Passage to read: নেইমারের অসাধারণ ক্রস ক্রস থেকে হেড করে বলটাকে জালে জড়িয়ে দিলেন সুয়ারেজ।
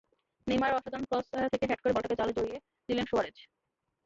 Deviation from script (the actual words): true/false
true